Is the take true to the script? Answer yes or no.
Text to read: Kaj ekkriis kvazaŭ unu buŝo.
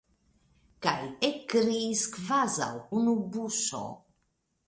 yes